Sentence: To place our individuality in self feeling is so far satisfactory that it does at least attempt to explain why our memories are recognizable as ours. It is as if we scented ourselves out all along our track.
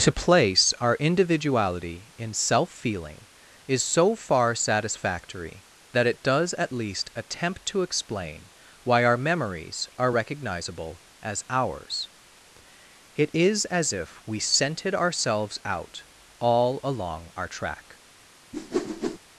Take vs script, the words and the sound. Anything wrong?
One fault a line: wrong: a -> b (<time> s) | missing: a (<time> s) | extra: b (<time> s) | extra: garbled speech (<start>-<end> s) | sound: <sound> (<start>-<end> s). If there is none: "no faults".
sound: whoosh (18.5-19.2 s)